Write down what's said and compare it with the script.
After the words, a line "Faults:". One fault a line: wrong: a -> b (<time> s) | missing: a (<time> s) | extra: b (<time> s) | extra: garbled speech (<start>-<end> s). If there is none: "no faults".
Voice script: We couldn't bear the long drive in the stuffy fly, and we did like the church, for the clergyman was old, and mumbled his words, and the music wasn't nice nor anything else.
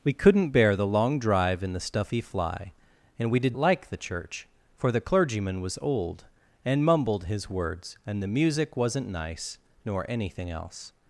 We couldn't bear the long drive in the stuffy fly, and we did like the church, for the clergyman was old, and mumbled his words, and the music wasn't nice nor anything else.
Faults:
no faults